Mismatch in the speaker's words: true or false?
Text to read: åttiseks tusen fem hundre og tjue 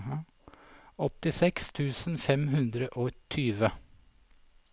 false